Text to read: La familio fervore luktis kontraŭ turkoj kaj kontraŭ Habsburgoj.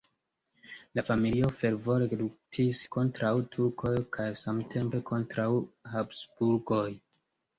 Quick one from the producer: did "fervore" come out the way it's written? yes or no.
yes